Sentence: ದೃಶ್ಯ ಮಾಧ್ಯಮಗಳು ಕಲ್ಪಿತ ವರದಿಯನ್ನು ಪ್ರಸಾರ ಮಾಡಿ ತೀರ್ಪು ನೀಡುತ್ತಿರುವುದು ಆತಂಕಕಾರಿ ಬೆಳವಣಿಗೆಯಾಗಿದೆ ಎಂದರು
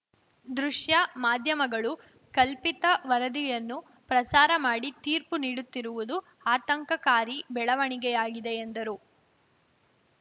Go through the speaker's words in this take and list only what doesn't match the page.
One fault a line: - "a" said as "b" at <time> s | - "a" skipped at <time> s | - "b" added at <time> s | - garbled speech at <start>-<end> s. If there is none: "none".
none